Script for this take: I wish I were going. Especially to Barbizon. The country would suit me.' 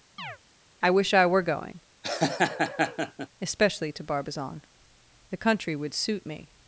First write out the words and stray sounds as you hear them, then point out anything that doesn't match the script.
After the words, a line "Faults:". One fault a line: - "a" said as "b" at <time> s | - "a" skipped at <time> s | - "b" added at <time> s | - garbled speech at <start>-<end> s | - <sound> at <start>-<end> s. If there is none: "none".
I wish I were going. Especially to Barbizon. The country would suit me.'
Faults:
- chirp at 0.2-0.4 s
- laugh at 2.0-3.3 s